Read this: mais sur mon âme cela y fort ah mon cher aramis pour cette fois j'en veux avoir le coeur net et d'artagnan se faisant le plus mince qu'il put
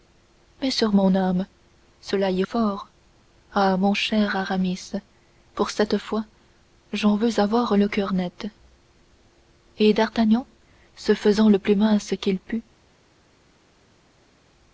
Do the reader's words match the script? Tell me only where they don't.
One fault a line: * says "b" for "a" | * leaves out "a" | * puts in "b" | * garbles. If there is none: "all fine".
all fine